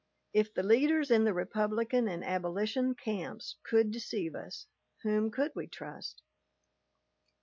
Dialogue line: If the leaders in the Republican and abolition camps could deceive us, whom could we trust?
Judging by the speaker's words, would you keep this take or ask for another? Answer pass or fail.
pass